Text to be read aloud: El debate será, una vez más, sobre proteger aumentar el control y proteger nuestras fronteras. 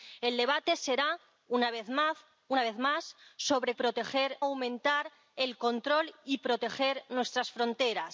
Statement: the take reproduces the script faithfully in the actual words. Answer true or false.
true